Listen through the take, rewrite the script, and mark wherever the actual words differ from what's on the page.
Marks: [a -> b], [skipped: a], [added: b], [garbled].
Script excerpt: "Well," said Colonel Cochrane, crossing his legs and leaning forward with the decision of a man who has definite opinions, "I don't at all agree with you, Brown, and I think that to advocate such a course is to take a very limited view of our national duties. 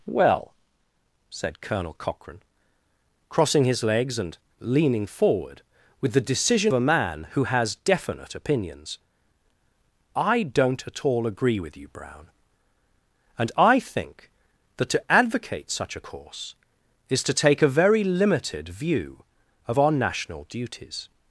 "Well," said Colonel Cochrane, crossing his legs and leaning forward with the decision [skipped: of] a man who has definite opinions, "I don't at all agree with you, Brown, and I think that to advocate such a course is to take a very limited view of our national duties.